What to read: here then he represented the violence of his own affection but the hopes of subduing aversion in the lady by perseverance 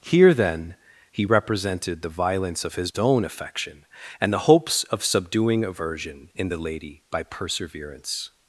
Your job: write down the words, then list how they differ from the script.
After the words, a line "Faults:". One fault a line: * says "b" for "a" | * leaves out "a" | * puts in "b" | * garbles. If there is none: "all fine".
here then he represented the violence of his own affection and the hopes of subduing aversion in the lady by perseverance
Faults:
* says "and" for "but"